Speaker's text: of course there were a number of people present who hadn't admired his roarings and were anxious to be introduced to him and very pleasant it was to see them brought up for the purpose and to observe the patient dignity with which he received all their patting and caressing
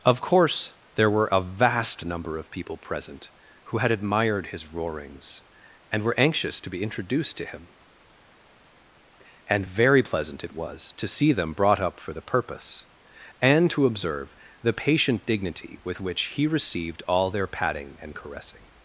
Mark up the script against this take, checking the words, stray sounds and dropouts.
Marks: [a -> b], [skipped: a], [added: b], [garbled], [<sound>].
of course there were a [added: vast] number of people present who [hadn't -> had] admired his roarings and were anxious to be introduced to him and very pleasant it was to see them brought up for the purpose and to observe the patient dignity with which he received all their patting and caressing